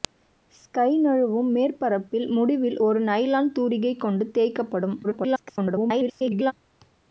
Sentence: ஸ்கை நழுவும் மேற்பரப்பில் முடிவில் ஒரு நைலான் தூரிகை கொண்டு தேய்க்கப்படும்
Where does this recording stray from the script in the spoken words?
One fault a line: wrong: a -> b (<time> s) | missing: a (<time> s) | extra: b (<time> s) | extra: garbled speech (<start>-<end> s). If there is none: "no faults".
extra: garbled speech (5.0-6.5 s)